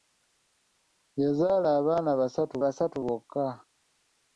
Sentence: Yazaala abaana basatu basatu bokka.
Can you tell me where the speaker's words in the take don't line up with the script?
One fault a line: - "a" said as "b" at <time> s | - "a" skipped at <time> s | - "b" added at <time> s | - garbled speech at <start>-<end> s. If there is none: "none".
none